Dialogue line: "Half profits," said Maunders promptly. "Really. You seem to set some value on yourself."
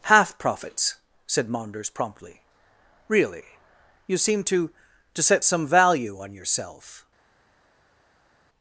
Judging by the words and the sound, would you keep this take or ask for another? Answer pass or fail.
fail